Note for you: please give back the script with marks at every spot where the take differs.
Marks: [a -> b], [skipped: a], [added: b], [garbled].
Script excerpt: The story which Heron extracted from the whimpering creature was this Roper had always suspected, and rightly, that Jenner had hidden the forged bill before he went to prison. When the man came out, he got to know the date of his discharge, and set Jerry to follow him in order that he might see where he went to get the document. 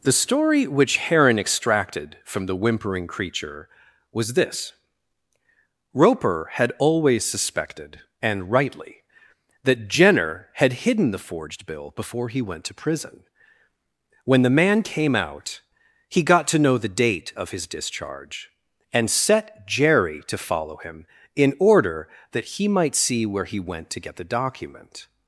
The story which Heron extracted from the whimpering creature was this Roper had always suspected, and rightly, that Jenner had hidden the forged bill before he went to prison. When the man came out, he got to know the date of his discharge, and set Jerry to follow him in order that he might see where he went to get the document.